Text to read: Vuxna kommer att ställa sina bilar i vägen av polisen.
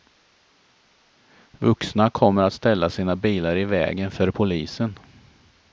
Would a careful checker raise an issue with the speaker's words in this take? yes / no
yes